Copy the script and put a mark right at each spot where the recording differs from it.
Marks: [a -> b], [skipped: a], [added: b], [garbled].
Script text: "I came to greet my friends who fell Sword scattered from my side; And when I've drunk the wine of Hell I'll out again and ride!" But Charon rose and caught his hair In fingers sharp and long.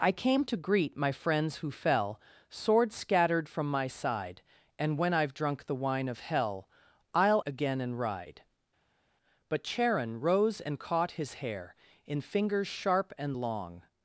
"I came to greet my friends who fell Sword scattered from my side; And when I've drunk the wine of Hell I'll [skipped: out] again and ride!" But Charon rose and caught his hair In fingers sharp and long.